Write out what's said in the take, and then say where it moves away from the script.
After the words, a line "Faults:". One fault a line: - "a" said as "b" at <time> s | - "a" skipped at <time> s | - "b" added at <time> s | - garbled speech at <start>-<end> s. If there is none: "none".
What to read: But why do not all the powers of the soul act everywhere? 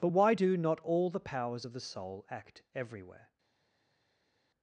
But why do not all the powers of the soul act everywhere?
Faults:
none